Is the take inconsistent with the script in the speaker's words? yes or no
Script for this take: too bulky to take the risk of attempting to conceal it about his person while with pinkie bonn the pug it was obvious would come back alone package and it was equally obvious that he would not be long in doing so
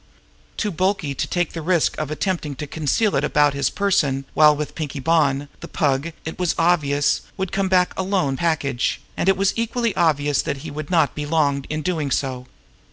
no